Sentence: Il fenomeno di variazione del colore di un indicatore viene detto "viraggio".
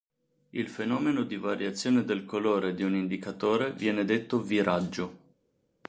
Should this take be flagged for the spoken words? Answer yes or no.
no